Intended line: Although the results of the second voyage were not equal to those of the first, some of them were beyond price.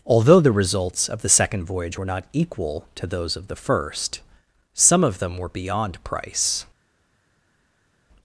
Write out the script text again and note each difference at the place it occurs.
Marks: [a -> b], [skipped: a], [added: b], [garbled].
Although the results of the second voyage were not equal to those of the first, some of them were beyond price.